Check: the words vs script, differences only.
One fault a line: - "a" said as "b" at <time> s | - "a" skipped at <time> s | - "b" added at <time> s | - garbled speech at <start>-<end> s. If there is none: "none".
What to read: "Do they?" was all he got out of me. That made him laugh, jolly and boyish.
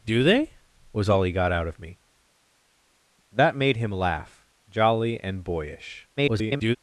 - garbled speech at 6.2-6.8 s